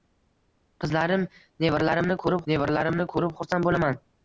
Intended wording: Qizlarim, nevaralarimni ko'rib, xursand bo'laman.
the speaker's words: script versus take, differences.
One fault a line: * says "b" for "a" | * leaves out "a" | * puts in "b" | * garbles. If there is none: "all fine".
* puts in "nevaralarimni ko'rib"